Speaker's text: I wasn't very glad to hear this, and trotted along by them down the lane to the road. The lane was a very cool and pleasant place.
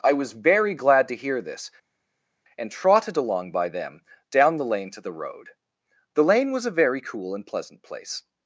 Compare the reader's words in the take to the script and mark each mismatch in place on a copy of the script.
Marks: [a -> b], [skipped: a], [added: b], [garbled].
I [wasn't -> was] very glad to hear this, and trotted along by them down the lane to the road. The lane was a very cool and pleasant place.